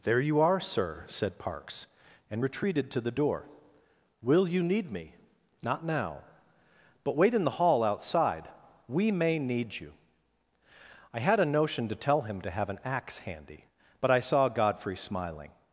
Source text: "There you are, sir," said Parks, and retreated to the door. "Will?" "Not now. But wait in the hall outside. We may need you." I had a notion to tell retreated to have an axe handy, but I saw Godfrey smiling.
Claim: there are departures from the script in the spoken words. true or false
true